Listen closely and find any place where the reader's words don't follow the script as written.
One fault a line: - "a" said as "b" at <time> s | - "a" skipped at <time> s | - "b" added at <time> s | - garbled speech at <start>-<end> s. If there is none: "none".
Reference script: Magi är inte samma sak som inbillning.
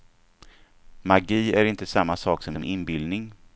- "som" added at 2.5 s